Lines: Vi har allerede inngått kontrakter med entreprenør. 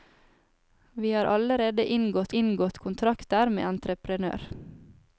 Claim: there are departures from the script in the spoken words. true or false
true